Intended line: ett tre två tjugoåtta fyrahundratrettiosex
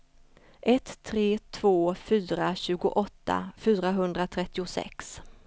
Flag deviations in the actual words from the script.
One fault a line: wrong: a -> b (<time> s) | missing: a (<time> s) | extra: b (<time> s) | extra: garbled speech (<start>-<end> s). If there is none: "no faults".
extra: fyra (1.9 s)